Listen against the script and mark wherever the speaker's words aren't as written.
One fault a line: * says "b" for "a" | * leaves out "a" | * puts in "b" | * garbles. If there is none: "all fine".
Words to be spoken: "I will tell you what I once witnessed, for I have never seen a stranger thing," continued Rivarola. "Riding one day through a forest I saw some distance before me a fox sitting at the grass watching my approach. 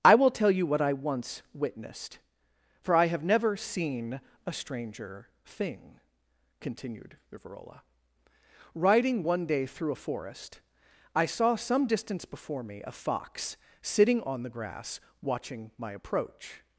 * says "on" for "at"